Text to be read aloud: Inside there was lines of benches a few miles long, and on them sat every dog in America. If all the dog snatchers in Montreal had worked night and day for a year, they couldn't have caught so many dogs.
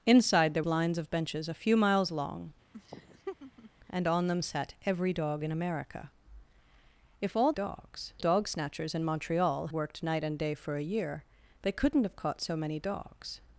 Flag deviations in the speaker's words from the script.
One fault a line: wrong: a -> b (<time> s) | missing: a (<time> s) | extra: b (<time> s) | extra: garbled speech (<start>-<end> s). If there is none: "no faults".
missing: was (0.6 s)
wrong: the -> dogs (7.5 s)
missing: had (9.7 s)